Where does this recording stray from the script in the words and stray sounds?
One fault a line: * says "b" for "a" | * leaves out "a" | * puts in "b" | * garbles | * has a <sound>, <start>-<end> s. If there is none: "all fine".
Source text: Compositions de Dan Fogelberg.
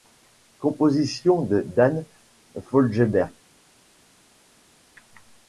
all fine